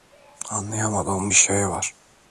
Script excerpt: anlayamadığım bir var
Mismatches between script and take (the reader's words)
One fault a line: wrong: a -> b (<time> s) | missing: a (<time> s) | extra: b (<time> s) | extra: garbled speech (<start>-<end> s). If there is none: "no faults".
extra: şey (1.3 s)